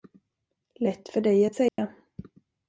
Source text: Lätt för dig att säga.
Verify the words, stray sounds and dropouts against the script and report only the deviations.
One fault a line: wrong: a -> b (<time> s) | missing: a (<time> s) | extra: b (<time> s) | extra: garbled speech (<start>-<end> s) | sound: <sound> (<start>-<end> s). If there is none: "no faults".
sound: dropout (1.7-1.8 s)